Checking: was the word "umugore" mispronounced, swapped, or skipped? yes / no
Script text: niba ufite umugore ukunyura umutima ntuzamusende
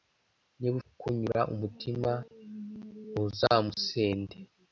yes